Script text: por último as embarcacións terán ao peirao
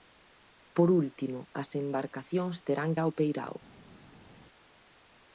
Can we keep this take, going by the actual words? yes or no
yes